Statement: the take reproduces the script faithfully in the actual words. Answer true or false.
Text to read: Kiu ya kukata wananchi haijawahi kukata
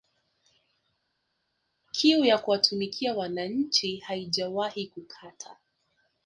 false